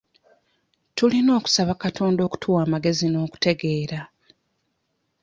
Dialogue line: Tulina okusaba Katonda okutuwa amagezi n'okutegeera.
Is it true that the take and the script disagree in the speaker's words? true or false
false